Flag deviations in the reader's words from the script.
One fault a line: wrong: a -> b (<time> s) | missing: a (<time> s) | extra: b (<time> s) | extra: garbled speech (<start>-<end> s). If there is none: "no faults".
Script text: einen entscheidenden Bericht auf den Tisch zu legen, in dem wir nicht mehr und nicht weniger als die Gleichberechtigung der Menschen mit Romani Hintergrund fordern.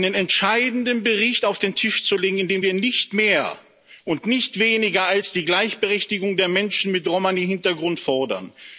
no faults